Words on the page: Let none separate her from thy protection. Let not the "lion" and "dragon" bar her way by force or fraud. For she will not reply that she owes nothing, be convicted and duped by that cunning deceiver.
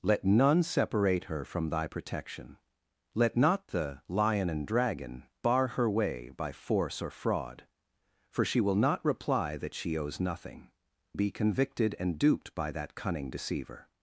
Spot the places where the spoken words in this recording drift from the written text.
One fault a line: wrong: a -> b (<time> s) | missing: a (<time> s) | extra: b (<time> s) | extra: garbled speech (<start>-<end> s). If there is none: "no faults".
no faults